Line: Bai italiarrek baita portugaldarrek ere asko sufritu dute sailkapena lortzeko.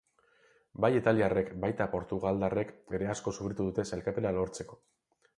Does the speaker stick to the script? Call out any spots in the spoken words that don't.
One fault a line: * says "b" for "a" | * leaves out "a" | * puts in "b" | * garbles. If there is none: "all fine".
all fine